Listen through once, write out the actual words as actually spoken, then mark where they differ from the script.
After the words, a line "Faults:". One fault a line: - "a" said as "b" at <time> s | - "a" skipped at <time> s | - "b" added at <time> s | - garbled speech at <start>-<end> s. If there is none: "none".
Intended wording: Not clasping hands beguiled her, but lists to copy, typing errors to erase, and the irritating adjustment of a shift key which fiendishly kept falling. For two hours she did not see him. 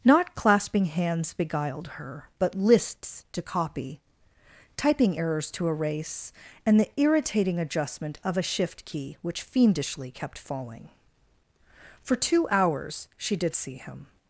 Not clasping hands beguiled her, but lists to copy, typing errors to erase, and the irritating adjustment of a shift key which fiendishly kept falling. For two hours she did see him.
Faults:
- "not" skipped at 13.5 s